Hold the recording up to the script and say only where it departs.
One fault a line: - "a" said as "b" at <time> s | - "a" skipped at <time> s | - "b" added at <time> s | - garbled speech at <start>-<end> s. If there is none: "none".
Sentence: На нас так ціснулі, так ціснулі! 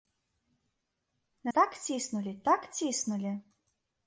- "нас" skipped at 1.5 s